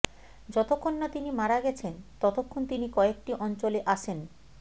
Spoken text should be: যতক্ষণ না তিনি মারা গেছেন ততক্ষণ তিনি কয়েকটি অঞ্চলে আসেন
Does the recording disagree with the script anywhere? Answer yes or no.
no